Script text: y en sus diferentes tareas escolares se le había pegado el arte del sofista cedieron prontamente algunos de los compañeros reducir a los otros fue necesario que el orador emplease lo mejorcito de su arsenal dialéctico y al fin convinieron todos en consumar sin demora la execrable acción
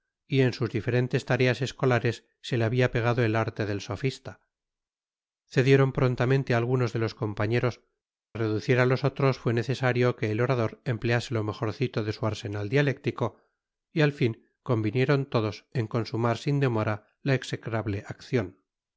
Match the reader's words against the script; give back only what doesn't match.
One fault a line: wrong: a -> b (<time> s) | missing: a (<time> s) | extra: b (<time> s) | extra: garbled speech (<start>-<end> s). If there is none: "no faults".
no faults